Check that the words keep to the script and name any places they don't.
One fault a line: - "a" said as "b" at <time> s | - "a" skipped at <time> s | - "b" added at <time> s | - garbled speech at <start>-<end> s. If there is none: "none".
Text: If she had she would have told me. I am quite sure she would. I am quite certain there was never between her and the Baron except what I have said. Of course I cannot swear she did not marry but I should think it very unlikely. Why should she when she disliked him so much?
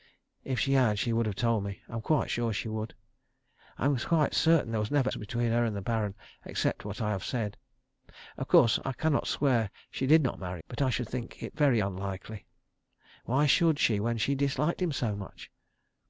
none